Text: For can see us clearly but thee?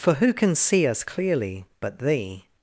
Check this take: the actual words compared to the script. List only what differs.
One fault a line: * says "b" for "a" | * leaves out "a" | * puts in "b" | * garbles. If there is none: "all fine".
* puts in "who"